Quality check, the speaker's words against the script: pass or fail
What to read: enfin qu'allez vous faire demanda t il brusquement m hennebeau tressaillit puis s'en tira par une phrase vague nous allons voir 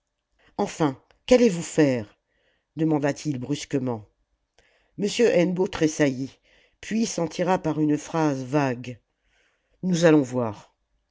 pass